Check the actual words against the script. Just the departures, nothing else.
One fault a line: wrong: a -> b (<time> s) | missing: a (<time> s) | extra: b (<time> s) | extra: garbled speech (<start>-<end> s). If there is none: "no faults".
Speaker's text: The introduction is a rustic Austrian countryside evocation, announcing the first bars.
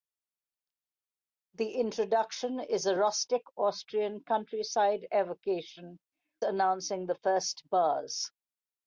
no faults